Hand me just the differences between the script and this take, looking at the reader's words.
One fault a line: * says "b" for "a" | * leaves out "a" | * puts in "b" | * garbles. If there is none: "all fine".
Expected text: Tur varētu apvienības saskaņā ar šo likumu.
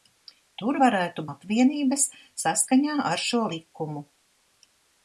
all fine